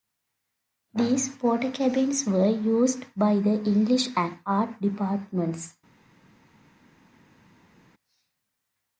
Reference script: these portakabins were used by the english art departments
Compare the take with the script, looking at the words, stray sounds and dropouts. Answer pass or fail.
fail